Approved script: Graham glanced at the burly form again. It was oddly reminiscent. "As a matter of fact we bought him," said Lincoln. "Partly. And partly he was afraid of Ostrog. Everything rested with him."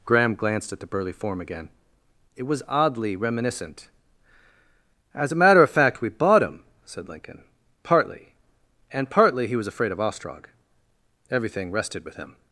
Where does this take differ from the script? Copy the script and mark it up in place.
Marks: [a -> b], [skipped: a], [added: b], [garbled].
Graham glanced at the burly form again. It was oddly reminiscent. "As a matter of fact we bought him," said Lincoln. "Partly. And partly he was afraid of Ostrog. Everything rested with him."